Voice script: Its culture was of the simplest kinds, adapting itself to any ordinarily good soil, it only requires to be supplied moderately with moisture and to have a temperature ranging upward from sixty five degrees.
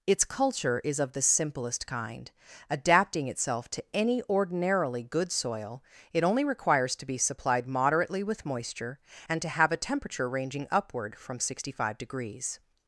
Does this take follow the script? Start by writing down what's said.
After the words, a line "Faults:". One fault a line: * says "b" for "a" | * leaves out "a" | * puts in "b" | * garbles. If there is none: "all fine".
Its culture is of the simplest kind, adapting itself to any ordinarily good soil, it only requires to be supplied moderately with moisture and to have a temperature ranging upward from sixty five degrees.
Faults:
* says "is" for "was"
* says "kind" for "kinds"